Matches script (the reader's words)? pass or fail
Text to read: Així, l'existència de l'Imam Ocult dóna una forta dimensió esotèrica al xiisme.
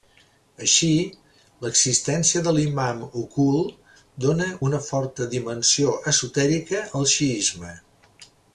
pass